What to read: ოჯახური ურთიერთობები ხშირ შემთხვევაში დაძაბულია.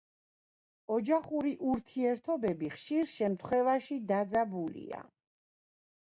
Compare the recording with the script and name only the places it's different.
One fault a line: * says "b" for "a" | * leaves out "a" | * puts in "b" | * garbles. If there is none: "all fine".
all fine